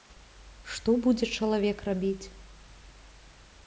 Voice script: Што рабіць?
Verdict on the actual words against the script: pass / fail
fail